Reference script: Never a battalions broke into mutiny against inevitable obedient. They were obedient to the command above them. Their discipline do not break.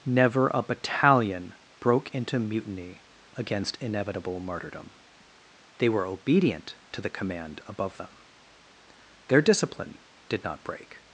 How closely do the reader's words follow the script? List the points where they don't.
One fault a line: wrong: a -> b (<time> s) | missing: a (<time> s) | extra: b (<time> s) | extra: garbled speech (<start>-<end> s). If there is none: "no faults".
wrong: battalions -> battalion (0.6 s)
wrong: obedient -> martyrdom (4.4 s)
wrong: do -> did (10.3 s)